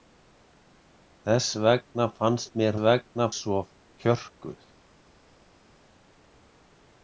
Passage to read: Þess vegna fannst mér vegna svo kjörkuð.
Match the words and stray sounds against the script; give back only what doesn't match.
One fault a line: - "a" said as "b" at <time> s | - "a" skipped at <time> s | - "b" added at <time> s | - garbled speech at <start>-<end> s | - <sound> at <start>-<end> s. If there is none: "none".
none